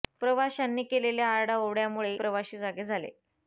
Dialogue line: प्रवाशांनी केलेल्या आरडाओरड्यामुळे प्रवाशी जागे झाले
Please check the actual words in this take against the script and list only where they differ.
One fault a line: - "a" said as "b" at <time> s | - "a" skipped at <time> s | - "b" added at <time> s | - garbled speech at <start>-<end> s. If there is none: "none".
none